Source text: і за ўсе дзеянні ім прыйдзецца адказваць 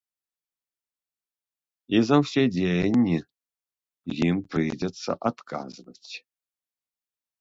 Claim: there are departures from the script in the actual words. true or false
false